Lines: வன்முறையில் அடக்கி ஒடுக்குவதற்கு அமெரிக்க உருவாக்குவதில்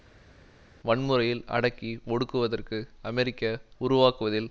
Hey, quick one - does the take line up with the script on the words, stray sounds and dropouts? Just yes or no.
yes